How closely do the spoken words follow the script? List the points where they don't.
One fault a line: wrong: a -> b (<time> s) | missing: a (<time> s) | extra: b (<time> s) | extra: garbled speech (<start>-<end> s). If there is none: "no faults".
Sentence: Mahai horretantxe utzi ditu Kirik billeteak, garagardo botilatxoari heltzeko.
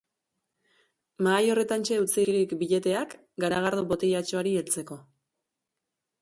missing: ditu (2.2 s)